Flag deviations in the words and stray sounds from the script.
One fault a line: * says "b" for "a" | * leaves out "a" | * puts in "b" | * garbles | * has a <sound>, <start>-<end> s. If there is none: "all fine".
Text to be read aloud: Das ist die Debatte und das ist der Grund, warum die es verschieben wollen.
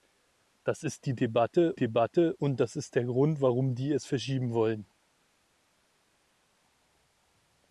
* puts in "Debatte"